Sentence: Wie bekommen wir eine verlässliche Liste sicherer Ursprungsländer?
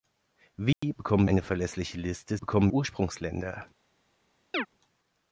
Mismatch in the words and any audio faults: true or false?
true